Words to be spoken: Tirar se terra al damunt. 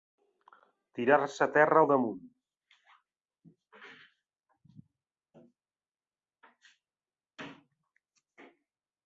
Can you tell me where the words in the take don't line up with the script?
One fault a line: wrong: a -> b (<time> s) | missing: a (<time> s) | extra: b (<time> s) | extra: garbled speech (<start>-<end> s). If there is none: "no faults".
no faults